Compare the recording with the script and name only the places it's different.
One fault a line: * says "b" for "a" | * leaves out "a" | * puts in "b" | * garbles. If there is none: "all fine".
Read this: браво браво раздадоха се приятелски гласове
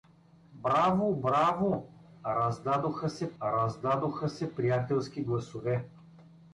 * puts in "раздадоха се"